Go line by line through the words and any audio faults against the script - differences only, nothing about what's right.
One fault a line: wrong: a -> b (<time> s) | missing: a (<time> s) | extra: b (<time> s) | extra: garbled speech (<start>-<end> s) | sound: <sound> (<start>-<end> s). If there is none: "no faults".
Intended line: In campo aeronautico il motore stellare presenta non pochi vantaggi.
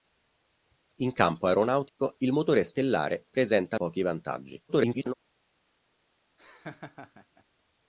sound: dropout (1.9-2.0 s)
missing: non (3.8 s)
extra: garbled speech (4.7-5.1 s)
sound: laugh (6.4-7.4 s)